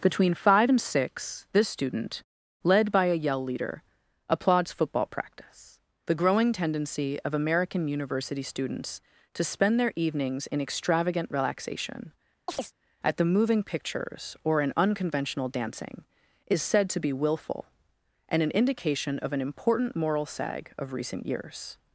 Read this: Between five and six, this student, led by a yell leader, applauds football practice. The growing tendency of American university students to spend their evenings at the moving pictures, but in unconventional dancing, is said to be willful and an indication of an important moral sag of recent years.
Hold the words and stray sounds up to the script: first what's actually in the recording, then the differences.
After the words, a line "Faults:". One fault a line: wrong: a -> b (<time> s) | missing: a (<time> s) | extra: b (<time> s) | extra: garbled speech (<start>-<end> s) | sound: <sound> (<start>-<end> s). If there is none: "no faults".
Between five and six, this student, led by a yell leader, applauds football practice. The growing tendency of American university students to spend their evenings in extravagant relaxation, at the moving pictures, or in unconventional dancing, is said to be willful and an indication of an important moral sag of recent years.
Faults:
extra: in extravagant relaxation (10.5 s)
sound: chirp (12.5-12.7 s)
wrong: but -> or (14.4 s)